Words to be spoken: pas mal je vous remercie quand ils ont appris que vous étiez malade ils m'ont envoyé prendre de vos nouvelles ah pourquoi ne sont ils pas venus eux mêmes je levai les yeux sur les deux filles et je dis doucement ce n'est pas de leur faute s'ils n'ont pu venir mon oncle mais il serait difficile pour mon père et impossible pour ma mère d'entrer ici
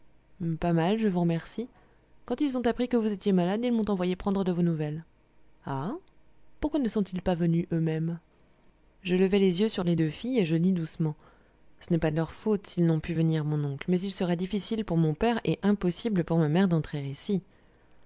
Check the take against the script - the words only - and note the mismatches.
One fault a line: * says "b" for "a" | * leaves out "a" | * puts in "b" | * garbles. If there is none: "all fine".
all fine